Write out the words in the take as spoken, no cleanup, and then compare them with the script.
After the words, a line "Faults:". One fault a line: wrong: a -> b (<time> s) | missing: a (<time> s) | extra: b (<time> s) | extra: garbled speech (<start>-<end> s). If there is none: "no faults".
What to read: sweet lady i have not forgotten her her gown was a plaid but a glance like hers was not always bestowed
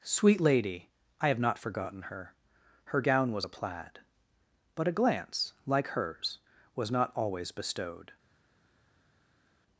sweet lady i have not forgotten her her gown was a plaid but a glance like hers was not always bestowed
Faults:
no faults